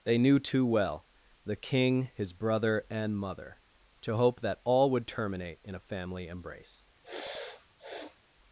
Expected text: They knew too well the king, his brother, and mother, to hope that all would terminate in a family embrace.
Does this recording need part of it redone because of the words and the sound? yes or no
yes